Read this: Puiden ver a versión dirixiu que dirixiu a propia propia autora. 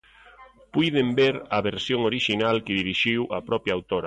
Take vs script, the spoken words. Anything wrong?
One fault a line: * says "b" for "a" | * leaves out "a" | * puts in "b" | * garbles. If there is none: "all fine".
* says "orixinal" for "dirixiu"
* leaves out "propia"